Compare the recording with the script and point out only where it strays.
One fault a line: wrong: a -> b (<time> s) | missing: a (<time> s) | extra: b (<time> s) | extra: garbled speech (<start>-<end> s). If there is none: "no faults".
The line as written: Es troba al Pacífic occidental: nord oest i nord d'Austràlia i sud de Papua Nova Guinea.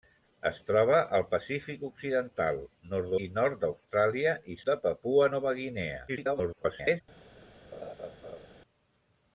missing: oest (3.1 s)
missing: sud (4.6 s)
extra: garbled speech (6.1-7.0 s)